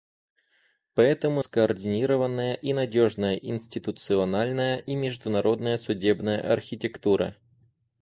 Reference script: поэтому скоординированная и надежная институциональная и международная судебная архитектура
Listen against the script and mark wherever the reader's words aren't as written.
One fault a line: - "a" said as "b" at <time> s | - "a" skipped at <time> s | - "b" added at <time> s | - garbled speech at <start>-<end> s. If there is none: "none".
none